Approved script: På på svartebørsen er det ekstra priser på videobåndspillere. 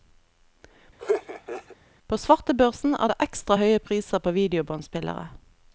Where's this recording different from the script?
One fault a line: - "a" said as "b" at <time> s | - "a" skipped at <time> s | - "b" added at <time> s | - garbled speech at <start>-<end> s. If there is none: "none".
- "på" skipped at 2.2 s
- "høye" added at 3.6 s